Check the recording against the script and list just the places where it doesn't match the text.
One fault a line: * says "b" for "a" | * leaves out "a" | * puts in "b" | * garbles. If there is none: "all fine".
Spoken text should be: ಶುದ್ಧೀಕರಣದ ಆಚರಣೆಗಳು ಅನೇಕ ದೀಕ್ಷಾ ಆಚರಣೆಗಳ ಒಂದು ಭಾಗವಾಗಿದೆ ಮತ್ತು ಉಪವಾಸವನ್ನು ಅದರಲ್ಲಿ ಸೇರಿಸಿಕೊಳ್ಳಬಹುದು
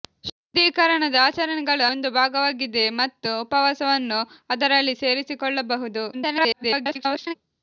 * leaves out "ಅನೇಕ ದೀಕ್ಷಾ ಆಚರಣೆಗಳ"
* garbles